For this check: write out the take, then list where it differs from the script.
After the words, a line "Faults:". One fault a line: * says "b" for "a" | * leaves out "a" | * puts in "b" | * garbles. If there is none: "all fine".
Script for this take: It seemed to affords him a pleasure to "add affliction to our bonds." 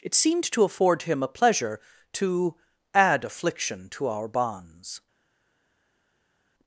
It seemed to afford him a pleasure to "add affliction to our bonds."
Faults:
* says "afford" for "affords"